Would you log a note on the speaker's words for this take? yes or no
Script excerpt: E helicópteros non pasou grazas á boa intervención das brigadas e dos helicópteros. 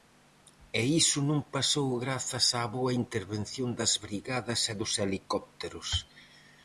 yes